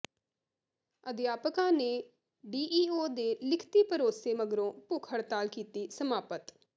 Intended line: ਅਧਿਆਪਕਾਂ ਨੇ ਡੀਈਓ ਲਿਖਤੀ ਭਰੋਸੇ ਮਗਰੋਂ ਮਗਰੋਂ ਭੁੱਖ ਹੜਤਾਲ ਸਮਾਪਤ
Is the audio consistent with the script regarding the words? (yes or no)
no